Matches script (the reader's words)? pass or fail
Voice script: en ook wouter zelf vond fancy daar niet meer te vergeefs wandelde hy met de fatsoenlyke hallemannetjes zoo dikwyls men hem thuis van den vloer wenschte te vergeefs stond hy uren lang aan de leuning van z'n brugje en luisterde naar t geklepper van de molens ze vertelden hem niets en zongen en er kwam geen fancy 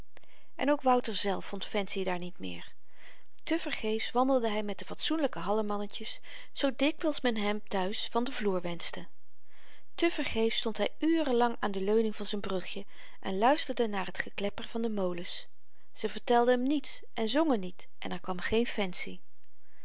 fail